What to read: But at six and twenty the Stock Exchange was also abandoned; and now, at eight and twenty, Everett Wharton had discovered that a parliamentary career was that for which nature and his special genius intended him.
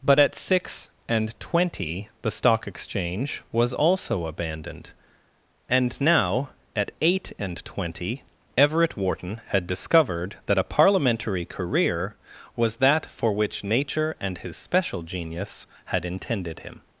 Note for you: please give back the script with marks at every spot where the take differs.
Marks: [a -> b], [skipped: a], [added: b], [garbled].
But at six and twenty the Stock Exchange was also abandoned; and now, at eight and twenty, Everett Wharton had discovered that a parliamentary career was that for which nature and his special genius [added: had] intended him.